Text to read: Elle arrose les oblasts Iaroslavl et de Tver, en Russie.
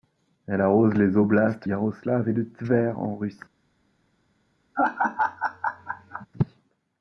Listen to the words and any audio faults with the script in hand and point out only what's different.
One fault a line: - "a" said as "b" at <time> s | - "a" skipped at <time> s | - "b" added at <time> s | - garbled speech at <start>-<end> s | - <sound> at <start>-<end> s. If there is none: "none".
- laugh at 4.7-6.3 s